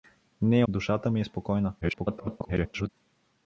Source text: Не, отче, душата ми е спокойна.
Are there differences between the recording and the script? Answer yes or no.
yes